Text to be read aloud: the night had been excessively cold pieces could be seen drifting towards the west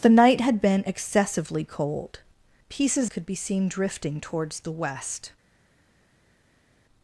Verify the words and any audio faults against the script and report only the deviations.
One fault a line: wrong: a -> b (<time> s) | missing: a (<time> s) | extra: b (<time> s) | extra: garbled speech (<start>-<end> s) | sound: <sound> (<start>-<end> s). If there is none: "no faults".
no faults